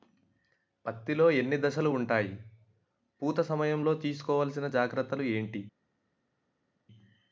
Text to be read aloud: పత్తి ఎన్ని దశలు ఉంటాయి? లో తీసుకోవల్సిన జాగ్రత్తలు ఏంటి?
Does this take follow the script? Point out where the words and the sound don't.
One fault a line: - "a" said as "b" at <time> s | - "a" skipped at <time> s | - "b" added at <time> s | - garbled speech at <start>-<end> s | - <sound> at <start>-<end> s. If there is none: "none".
- "లో" added at 1.1 s
- "పూత సమయం" added at 3.2 s